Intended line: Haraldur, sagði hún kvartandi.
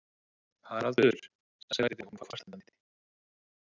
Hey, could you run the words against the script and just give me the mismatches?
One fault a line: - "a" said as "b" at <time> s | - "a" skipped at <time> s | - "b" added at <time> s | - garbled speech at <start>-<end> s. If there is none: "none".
none